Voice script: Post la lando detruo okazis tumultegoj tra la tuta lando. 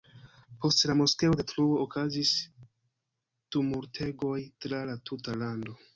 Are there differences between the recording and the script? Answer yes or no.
yes